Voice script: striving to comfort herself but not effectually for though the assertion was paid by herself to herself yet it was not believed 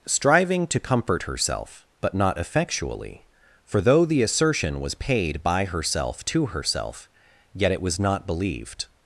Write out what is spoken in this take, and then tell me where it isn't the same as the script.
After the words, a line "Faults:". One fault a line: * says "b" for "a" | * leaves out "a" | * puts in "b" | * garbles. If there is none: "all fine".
striving to comfort herself but not effectually for though the assertion was paid by herself to herself yet it was not believed
Faults:
all fine